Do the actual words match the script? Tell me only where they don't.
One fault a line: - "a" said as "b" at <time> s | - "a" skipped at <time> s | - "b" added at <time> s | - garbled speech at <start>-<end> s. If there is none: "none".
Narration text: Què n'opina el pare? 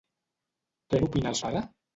none